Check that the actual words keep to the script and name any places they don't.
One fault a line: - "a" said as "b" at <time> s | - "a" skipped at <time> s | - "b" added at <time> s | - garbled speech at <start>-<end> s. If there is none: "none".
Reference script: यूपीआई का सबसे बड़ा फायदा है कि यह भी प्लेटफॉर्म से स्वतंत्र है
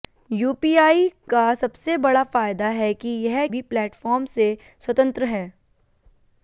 none